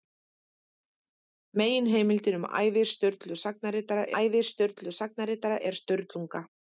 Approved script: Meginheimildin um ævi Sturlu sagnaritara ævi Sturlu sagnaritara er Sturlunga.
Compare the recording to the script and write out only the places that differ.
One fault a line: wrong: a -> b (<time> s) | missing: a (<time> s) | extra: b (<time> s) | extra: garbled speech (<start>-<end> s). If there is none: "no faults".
no faults